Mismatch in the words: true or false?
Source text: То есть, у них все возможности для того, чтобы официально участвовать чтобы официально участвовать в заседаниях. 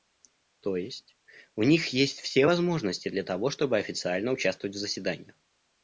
true